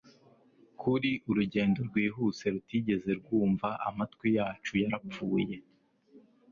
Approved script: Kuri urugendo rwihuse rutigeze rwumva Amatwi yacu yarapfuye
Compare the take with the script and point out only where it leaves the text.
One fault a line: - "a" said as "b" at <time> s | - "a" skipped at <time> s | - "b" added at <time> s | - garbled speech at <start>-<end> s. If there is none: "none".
none